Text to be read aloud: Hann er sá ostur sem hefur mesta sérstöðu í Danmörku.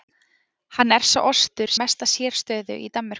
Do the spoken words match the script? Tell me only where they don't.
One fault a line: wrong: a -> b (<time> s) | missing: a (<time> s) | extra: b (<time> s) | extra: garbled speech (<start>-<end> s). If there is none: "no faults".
missing: sem hefur (1.7 s)